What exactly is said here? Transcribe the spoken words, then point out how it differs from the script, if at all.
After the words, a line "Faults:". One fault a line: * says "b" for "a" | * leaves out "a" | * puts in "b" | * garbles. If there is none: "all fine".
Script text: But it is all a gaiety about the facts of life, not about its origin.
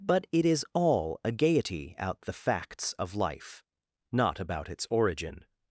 But it is all a gaiety out the facts of life, not about its origin.
Faults:
* says "out" for "about"